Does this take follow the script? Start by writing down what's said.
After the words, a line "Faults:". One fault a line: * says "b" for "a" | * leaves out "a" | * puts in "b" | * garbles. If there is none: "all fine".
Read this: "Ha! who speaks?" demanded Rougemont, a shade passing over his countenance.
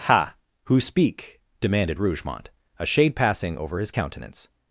"Ha! who speak?" demanded Rougemont, a shade passing over his countenance.
Faults:
* says "speak" for "speaks"